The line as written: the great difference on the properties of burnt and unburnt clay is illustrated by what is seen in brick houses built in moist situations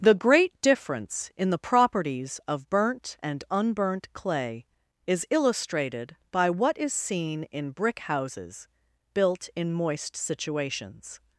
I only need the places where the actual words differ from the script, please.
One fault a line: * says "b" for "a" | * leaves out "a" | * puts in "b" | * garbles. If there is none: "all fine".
* says "in" for "on"